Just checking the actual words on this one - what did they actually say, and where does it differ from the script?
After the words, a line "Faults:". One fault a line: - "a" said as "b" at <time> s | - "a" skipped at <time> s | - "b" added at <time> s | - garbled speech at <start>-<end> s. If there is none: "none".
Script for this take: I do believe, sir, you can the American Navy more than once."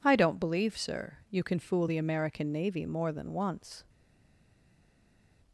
I don't believe, sir, you can fool the American Navy more than once."
Faults:
- "do" said as "don't" at 0.1 s
- "fool" added at 1.6 s